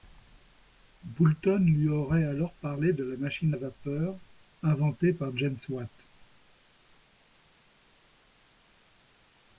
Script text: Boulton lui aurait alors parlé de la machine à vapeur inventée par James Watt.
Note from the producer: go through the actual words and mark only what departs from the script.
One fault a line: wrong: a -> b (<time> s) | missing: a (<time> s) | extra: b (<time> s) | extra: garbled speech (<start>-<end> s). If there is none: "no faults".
no faults